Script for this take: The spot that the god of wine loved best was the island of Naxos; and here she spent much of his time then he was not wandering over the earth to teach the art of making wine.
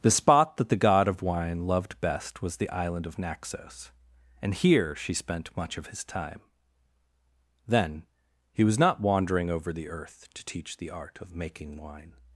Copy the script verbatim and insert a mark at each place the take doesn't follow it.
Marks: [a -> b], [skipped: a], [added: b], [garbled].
The spot that the god of wine loved best was the island of Naxos; and here she spent much of his time then he was not wandering over the earth to teach the art of making wine.